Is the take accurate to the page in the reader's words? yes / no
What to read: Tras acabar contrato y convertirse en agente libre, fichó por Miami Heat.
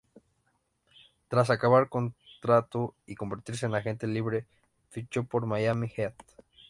yes